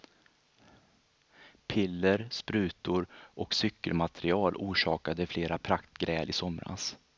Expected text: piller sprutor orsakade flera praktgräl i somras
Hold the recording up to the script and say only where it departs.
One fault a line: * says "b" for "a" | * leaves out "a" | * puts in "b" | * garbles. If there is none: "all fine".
* puts in "och cykelmaterial"